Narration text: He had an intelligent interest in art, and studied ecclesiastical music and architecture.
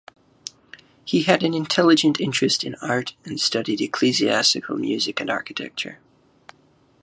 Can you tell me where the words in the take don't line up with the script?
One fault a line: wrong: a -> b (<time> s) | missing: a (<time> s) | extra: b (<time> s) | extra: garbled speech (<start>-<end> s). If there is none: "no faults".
no faults